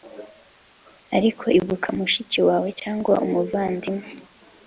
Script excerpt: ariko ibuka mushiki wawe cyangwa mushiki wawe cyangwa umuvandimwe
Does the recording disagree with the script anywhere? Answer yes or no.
yes